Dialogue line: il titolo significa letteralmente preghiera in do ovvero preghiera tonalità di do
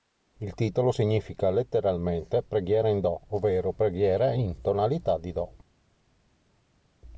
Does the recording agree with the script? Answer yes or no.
no